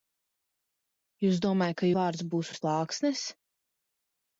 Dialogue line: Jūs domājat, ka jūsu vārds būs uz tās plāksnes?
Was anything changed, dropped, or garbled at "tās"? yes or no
yes